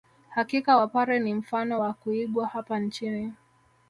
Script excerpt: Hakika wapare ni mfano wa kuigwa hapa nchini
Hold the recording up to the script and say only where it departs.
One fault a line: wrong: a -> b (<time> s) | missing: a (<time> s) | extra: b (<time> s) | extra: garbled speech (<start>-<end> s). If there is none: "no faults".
no faults